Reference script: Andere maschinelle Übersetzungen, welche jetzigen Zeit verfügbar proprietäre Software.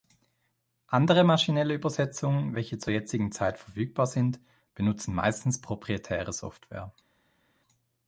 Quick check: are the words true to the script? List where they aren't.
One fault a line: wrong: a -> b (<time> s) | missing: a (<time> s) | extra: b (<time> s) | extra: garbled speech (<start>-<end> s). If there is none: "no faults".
extra: zur (2.8 s)
extra: sind benutzen meistens (4.1 s)